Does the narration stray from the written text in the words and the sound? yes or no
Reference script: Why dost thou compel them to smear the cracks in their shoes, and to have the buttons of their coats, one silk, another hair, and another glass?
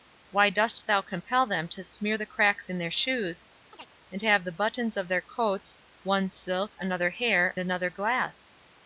yes